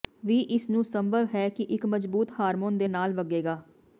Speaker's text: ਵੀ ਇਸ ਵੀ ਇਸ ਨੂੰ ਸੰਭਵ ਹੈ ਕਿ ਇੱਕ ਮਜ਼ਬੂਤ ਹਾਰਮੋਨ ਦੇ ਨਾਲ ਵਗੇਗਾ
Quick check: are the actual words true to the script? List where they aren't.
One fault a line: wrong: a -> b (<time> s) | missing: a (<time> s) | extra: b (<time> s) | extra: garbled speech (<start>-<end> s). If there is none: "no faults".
missing: ਵੀ ਇਸ (0.7 s)